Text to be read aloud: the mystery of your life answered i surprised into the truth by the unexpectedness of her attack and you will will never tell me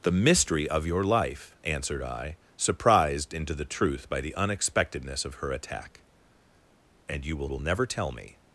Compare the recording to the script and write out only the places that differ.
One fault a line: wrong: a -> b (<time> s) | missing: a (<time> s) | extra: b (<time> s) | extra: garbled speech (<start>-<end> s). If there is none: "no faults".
no faults